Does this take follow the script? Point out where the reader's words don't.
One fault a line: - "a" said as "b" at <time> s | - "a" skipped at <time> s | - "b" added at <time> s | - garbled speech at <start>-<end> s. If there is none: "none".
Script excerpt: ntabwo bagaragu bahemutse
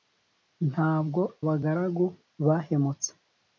none